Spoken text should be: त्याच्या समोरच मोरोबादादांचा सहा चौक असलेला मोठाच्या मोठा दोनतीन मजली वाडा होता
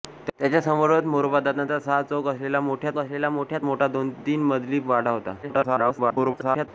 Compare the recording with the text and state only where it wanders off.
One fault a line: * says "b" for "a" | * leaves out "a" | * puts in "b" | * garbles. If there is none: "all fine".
* puts in "असलेला मोठाच्या"
* garbles